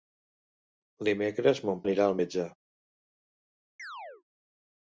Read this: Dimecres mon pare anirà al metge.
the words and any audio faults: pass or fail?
fail